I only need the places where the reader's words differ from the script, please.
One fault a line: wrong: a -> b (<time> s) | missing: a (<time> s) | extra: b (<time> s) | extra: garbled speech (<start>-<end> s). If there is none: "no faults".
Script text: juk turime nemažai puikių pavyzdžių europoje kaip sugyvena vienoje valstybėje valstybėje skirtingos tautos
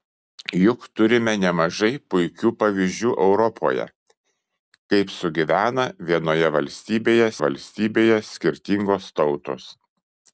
no faults